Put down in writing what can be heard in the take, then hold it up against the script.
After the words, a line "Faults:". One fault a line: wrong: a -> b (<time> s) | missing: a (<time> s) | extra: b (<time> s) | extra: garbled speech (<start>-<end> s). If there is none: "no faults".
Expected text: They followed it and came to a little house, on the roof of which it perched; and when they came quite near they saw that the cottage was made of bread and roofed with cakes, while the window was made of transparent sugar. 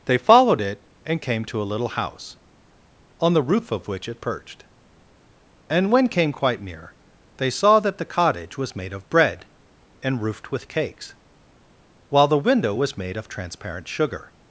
They followed it and came to a little house, on the roof of which it perched; and when came quite near they saw that the cottage was made of bread and roofed with cakes, while the window was made of transparent sugar.
Faults:
missing: they (6.1 s)